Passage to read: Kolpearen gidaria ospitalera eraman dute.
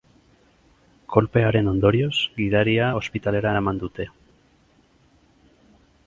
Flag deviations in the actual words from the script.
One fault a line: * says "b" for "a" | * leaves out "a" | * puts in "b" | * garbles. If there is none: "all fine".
* puts in "ondorioz"